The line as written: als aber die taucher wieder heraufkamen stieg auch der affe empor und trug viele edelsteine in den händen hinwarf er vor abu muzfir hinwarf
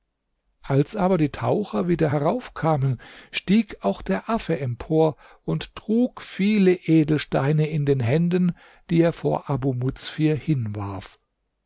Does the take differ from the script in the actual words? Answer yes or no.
yes